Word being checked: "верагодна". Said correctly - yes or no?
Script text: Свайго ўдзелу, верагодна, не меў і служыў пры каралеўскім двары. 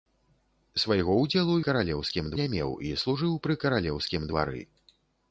no